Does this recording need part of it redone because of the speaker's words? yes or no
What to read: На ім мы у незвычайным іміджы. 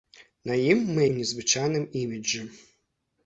no